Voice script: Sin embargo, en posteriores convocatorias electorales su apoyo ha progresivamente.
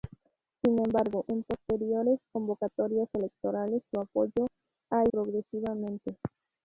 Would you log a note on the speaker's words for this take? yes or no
no